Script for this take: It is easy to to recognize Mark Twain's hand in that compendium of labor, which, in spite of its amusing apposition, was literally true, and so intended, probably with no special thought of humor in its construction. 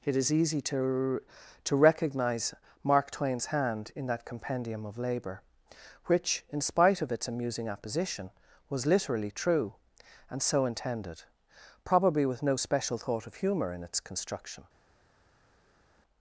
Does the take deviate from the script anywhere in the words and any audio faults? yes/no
no